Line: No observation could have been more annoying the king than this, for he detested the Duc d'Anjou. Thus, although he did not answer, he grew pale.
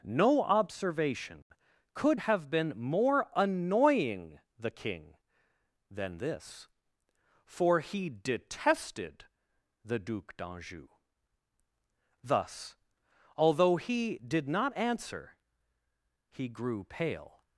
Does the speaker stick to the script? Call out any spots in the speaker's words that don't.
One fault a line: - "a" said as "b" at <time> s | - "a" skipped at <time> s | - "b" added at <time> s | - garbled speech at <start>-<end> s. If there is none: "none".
none